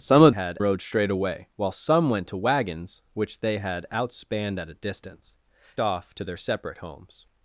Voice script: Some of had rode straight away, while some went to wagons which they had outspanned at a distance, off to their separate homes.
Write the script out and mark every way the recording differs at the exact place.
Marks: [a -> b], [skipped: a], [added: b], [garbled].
Some of had rode straight away, while some went to wagons which they had outspanned at a distance, off to their separate homes.